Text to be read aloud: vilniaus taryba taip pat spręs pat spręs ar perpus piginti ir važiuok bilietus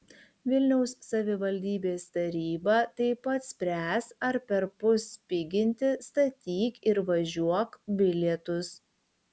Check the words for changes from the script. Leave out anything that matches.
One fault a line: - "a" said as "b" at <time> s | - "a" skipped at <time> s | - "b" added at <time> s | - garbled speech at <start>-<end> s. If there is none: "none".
- "savivaldybės" added at 1.1 s
- "pat spręs" skipped at 4.1 s
- "statyk" added at 6.1 s